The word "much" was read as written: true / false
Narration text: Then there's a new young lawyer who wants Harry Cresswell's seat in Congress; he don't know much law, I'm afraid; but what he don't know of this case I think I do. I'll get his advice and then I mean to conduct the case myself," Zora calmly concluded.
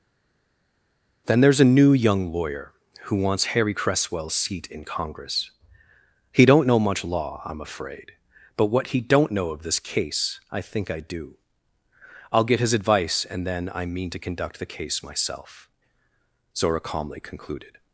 true